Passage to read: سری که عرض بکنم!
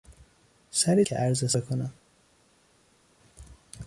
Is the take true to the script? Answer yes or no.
yes